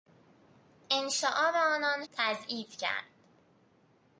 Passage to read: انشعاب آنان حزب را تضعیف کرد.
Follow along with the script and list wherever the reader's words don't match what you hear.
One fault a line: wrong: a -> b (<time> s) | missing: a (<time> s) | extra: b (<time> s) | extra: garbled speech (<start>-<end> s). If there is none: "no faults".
missing: حزب را (2.0 s)